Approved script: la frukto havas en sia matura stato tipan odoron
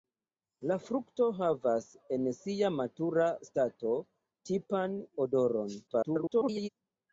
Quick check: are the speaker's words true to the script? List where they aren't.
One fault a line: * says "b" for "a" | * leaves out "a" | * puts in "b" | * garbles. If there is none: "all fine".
* garbles